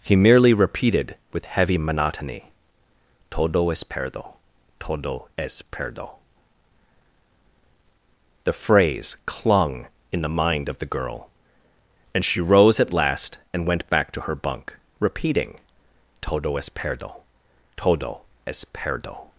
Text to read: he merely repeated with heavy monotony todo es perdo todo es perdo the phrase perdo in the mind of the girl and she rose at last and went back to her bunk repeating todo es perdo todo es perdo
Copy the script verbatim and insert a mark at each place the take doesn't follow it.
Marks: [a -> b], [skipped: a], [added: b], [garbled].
he merely repeated with heavy monotony todo es perdo todo es perdo the phrase [perdo -> clung] in the mind of the girl and she rose at last and went back to her bunk repeating todo es perdo todo es perdo